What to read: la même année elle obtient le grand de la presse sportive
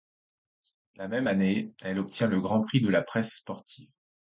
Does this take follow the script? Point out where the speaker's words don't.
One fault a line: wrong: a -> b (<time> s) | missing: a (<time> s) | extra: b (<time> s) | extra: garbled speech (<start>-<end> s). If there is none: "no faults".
extra: prix (2.6 s)